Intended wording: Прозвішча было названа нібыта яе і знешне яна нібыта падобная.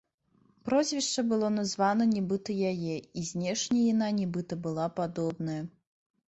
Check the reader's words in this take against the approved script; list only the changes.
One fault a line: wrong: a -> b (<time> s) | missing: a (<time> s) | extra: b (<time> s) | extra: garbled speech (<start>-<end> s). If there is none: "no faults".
extra: была (4.7 s)